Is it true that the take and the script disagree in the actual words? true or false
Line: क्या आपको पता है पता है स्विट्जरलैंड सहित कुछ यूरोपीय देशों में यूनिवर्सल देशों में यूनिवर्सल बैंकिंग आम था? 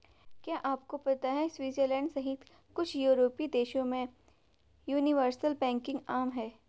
true